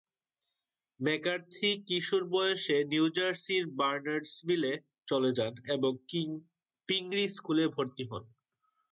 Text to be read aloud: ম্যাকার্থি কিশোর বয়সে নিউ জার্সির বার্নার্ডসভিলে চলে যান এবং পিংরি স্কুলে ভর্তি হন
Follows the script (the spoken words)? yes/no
yes